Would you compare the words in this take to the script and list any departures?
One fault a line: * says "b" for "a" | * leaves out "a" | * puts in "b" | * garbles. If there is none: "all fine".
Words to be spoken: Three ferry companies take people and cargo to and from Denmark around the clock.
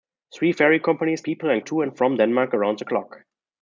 * leaves out "take"
* leaves out "cargo"